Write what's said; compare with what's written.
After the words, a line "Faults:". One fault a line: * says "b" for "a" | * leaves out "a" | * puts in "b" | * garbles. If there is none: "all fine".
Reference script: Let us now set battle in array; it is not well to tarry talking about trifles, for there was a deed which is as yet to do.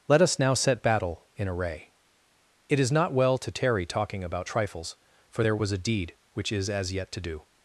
Let us now set battle in array; it is not well to tarry talking about trifles, for there was a deed which is as yet to do.
Faults:
all fine